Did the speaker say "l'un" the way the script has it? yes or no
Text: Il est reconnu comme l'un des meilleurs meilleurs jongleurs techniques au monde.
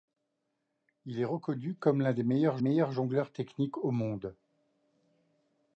yes